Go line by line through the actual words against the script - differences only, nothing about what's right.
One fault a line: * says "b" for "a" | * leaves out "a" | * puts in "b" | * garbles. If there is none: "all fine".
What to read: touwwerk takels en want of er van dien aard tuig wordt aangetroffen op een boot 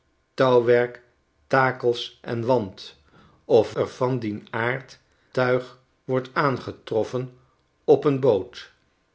all fine